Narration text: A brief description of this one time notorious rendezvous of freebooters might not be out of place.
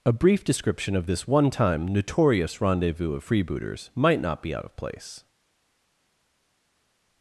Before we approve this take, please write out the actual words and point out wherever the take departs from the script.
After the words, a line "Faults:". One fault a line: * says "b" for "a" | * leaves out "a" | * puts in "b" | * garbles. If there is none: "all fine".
A brief description of this one time notorious rendezvous of freebooters might not be out of place.
Faults:
all fine